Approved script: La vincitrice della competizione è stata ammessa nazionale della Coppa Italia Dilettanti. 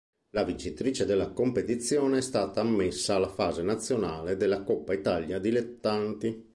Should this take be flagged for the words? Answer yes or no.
yes